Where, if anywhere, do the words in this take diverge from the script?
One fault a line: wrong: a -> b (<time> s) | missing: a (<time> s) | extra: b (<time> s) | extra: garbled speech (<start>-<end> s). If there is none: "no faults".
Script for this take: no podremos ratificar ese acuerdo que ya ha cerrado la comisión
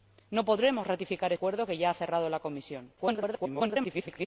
missing: ese (1.3 s)
extra: garbled speech (3.0-4.3 s)